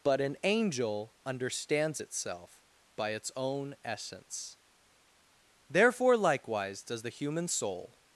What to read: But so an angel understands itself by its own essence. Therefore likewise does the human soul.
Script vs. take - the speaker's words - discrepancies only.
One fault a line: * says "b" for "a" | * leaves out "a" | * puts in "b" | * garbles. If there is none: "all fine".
* leaves out "so"